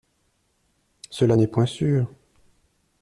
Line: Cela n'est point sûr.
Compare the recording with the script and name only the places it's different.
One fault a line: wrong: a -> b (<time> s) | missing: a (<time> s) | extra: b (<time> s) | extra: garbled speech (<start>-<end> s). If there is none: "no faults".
no faults